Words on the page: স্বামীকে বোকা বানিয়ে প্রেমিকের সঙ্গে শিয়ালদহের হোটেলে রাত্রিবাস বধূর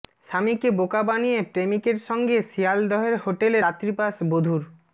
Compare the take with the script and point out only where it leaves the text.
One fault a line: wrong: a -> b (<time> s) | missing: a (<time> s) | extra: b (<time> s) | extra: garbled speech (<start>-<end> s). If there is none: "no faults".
no faults